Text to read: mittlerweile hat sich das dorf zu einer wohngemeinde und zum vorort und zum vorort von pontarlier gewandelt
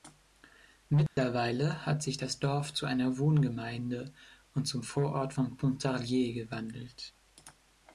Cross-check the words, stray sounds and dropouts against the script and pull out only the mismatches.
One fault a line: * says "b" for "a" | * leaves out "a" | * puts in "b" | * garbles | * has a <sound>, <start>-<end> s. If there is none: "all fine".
* has a dropout, 1.1-1.2 s
* leaves out "und zum vorort"